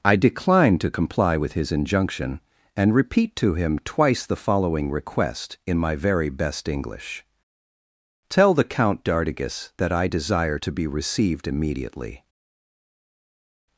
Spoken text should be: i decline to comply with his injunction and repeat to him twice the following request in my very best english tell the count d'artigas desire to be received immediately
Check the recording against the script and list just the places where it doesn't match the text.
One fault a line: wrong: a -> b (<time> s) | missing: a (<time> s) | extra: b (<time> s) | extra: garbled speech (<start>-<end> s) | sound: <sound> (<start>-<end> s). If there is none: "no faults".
extra: that i (9.8 s)